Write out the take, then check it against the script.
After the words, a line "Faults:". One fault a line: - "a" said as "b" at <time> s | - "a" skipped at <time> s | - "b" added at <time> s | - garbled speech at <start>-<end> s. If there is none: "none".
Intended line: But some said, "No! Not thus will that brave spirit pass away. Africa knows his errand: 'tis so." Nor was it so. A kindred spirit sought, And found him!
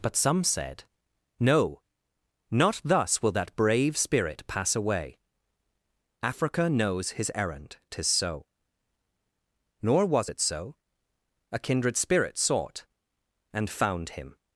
But some said, "No! Not thus will that brave spirit pass away. Africa knows his errand: 'tis so." Nor was it so. A kindred spirit sought, And found him!
Faults:
none